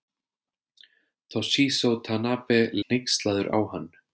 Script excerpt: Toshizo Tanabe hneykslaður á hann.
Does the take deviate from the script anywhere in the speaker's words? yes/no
no